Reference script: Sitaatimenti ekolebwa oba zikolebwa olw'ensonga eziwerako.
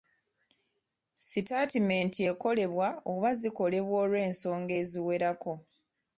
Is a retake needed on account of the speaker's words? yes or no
no